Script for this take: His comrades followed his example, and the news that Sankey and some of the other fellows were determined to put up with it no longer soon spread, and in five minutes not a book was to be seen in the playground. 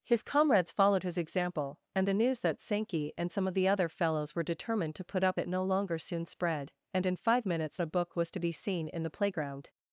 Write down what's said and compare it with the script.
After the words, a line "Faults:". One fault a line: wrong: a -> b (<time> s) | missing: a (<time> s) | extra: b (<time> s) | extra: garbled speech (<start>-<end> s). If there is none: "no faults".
His comrades followed his example, and the news that Sankey and some of the other fellows were determined to put up it no longer soon spread, and in five minutes a book was to be seen in the playground.
Faults:
missing: with (5.4 s)
missing: not (7.8 s)